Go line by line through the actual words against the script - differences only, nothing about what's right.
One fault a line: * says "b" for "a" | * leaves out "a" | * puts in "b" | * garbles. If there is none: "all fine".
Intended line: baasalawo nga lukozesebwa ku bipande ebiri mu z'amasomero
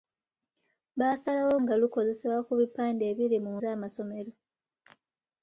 all fine